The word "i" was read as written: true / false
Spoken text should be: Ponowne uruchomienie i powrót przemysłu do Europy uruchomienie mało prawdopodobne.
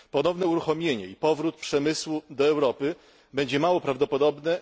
true